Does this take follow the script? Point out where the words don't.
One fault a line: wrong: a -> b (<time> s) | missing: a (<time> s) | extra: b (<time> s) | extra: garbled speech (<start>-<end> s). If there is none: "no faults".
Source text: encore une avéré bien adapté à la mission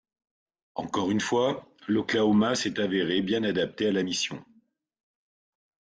extra: fois l'oklahoma s'est (1.2 s)